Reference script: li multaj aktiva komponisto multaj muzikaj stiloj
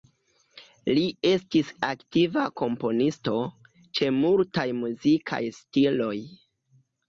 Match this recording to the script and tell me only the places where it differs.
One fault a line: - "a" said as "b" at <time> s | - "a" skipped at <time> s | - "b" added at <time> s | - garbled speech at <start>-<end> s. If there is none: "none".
- "multaj" said as "estis" at 1.3 s
- "ĉe" added at 4.0 s